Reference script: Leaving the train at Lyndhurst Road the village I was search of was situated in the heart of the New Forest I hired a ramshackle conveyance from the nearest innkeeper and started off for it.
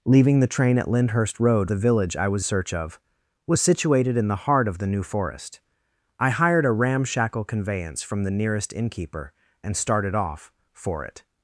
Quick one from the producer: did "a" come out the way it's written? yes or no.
yes